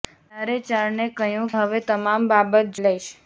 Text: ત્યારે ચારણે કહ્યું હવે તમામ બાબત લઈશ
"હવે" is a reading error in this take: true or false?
false